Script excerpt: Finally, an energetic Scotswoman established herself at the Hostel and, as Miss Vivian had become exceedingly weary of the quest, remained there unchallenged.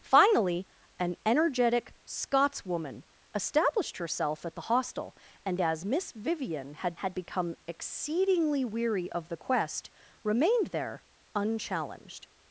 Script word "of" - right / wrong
right